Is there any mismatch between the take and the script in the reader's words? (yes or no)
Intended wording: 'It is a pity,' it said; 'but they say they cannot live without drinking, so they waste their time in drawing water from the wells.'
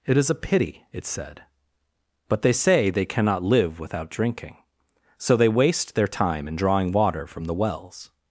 no